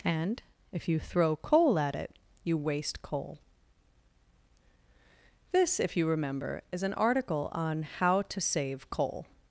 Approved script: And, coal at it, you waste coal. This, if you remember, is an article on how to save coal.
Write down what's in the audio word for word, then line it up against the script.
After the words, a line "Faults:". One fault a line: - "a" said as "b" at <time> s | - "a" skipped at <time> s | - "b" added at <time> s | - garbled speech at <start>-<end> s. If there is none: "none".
And, if you throw coal at it, you waste coal. This, if you remember, is an article on how to save coal.
Faults:
- "if you throw" added at 0.7 s